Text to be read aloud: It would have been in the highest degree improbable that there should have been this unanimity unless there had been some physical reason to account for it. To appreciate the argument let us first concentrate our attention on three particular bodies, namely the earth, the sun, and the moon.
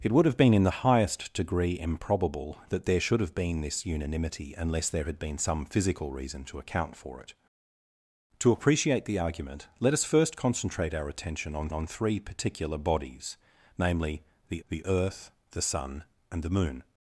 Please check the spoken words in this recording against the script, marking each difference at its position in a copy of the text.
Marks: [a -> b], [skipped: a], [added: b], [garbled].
It would have been in the highest degree improbable that there should have been this unanimity unless there had been some physical reason to account for it. To appreciate the argument let us first concentrate our attention on [added: on] three particular bodies, namely the [added: the] earth, the sun, and the moon.